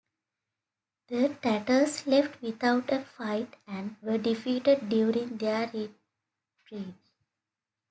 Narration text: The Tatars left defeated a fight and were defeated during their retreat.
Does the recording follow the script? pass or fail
fail